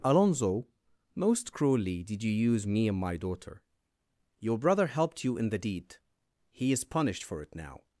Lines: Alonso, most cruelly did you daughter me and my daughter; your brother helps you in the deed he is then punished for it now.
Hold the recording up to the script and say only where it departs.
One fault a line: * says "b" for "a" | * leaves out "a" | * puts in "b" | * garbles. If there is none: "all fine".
* says "use" for "daughter"
* says "helped" for "helps"
* leaves out "then"